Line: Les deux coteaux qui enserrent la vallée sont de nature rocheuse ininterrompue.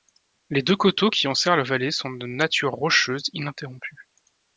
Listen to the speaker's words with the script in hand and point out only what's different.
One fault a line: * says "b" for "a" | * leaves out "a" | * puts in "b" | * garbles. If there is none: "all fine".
all fine